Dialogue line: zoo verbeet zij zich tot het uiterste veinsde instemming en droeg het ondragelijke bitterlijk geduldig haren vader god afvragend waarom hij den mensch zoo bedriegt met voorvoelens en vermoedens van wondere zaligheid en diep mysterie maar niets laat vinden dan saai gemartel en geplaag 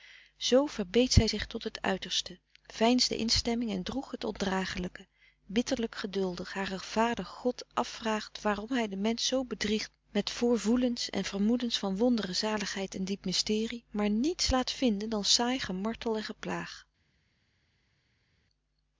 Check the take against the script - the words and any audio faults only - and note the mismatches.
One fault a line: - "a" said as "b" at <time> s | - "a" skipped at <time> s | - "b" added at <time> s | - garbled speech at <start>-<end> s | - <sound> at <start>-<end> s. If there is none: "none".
none